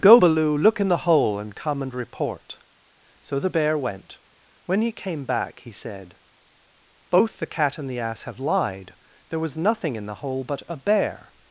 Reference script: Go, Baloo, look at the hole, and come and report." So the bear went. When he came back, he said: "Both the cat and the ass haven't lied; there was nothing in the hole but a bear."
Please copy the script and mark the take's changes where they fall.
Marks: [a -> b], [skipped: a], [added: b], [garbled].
Go, Baloo, look [at -> in] the hole, and come and report." So the bear went. When he came back, he said: "Both the cat and the ass [haven't -> have] lied; there was nothing in the hole but a bear."